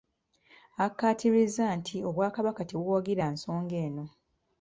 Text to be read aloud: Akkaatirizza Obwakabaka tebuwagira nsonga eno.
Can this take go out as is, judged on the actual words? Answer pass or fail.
fail